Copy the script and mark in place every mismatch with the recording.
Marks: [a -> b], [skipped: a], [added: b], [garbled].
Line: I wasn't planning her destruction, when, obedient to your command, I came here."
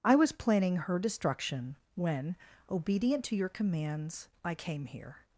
I [wasn't -> was] planning her destruction, when, obedient to your [command, -> commands] I came here."